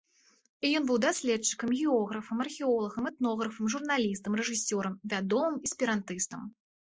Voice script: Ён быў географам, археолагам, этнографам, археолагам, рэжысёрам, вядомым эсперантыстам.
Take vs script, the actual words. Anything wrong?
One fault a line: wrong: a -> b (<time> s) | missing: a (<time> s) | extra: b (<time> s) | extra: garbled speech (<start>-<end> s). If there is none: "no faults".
extra: даследчыкам (1.0 s)
wrong: археолагам -> журналістам (3.7 s)